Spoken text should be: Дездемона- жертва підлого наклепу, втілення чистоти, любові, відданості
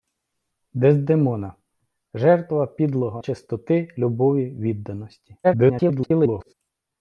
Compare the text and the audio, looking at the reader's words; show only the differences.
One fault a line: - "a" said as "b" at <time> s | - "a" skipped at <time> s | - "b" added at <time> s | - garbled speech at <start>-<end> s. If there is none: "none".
- "наклепу втілення" skipped at 3.2 s
- garbled speech at 5.4-6.5 s